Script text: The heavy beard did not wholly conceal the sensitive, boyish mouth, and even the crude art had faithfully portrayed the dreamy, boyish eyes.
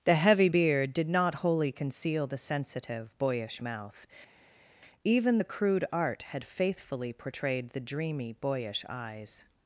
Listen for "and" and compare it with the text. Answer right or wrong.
wrong